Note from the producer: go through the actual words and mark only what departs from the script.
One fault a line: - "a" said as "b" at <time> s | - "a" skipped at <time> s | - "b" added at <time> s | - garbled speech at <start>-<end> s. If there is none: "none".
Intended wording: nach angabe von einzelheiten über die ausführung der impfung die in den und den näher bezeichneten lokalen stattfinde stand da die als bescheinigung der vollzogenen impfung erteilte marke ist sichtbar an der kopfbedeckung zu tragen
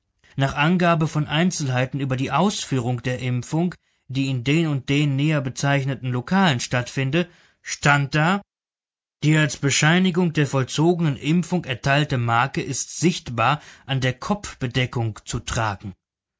none